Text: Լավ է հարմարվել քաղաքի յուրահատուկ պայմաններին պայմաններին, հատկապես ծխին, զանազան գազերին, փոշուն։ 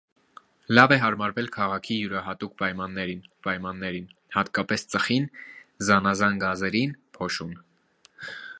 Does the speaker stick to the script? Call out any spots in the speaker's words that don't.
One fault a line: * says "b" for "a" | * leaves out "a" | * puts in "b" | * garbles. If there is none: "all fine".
all fine